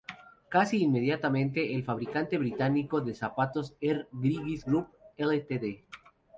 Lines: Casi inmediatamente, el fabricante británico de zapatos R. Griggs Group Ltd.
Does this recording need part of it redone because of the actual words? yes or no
no